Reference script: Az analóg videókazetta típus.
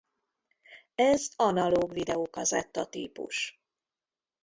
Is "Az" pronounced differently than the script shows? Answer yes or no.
yes